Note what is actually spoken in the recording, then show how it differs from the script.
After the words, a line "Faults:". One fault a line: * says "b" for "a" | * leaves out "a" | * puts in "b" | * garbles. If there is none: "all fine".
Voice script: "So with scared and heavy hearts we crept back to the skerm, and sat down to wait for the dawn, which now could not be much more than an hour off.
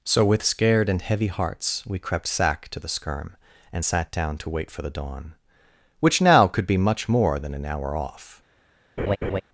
"So with scared and heavy hearts we crept sack to the skerm, and sat down to wait for the dawn, which now could be much more than an hour off.
Faults:
* says "sack" for "back"
* leaves out "not"